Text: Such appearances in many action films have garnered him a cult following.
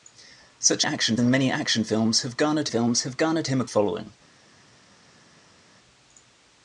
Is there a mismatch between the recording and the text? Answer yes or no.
yes